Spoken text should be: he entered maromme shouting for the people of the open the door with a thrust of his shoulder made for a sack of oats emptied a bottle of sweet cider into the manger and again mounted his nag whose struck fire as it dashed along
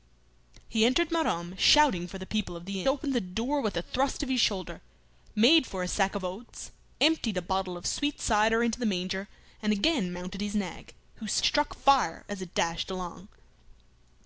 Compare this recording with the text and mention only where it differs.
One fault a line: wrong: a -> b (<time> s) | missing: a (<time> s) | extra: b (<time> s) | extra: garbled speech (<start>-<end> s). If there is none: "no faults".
no faults